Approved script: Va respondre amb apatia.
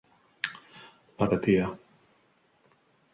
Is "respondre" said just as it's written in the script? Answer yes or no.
no